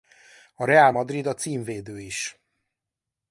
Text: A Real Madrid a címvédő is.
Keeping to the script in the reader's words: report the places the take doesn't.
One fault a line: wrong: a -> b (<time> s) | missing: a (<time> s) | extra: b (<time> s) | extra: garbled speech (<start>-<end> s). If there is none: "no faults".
no faults